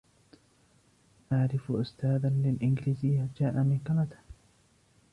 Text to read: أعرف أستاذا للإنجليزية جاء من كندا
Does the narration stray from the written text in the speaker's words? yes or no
no